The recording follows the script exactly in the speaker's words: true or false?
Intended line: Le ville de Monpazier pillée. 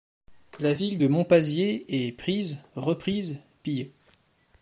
false